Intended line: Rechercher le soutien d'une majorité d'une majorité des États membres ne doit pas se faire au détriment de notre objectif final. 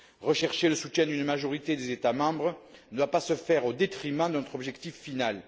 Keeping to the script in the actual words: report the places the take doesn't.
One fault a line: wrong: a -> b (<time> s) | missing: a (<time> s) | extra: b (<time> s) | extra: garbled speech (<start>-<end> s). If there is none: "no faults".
missing: d'une majorité (1.8 s)